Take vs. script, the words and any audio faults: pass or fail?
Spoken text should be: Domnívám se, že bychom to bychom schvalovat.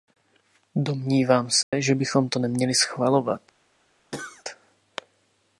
fail